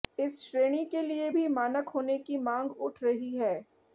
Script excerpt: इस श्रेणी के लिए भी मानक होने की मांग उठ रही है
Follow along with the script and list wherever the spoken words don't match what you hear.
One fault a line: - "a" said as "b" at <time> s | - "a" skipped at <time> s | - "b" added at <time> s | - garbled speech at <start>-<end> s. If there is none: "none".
none